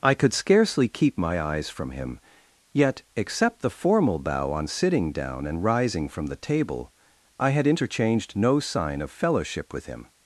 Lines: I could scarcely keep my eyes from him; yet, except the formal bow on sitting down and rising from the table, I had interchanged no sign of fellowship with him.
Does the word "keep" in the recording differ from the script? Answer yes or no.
no